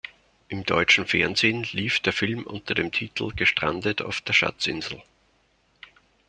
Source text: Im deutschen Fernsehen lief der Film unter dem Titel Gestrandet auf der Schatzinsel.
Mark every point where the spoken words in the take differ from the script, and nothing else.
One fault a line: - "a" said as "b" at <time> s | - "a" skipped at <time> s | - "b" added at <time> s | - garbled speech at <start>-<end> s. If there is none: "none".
none